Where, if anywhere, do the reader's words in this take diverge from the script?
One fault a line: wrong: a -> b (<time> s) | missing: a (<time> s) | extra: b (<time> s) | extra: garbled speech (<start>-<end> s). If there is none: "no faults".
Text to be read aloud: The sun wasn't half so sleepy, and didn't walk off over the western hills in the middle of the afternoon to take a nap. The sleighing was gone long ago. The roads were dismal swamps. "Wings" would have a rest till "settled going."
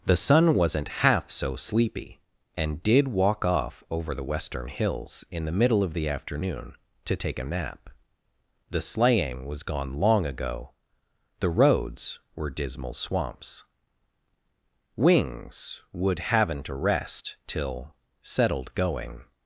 wrong: didn't -> did (2.8 s)
wrong: have -> haven't (16.2 s)